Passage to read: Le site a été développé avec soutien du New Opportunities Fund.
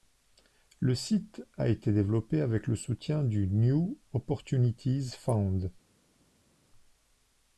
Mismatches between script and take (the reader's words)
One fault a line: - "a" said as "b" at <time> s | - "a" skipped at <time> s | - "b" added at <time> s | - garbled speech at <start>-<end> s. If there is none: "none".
- "le" added at 2.6 s